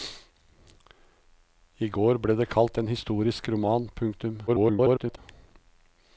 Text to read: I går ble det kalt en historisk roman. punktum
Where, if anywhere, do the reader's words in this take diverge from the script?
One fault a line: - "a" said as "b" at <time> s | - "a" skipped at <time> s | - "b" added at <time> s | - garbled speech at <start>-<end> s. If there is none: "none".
- garbled speech at 4.5-5.2 s